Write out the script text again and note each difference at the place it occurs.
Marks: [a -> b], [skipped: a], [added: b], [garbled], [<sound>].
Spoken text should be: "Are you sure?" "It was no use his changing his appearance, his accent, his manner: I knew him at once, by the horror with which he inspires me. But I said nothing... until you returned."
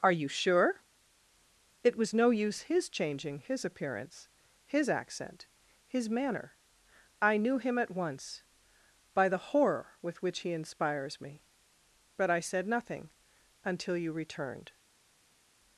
"Are you sure?" "It was no use his changing his appearance, his accent, his manner: I knew him at once, by the horror with which he inspires me. But I said nothing... until you returned."